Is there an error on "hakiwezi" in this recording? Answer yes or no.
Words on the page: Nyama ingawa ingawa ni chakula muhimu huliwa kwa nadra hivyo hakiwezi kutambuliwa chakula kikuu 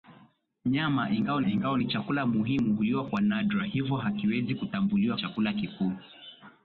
no